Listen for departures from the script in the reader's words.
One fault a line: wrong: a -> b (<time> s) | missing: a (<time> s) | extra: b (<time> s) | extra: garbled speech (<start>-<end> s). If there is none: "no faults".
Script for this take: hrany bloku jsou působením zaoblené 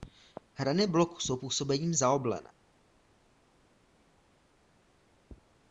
no faults